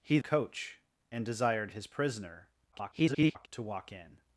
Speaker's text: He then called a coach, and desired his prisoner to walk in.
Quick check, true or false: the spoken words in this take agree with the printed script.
false